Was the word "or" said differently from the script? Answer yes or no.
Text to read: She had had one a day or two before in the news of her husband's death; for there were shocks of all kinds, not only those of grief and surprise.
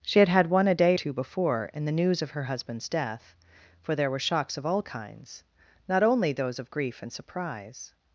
yes